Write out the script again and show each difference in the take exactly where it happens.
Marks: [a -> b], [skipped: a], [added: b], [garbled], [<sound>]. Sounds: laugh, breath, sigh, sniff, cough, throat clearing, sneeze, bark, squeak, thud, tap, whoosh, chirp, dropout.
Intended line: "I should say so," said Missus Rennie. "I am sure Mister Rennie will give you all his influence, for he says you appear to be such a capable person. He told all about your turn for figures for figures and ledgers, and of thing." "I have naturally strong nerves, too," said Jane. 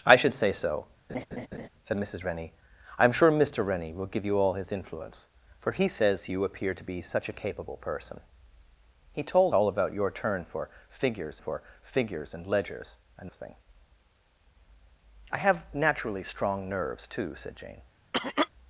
"I should say so," [laugh] said Missus Rennie. "I am sure Mister Rennie will give you all his influence, for he says you appear to be such a capable person. He told all about your turn for figures for figures and ledgers, and of thing." "I have naturally strong nerves, too," said Jane. [cough]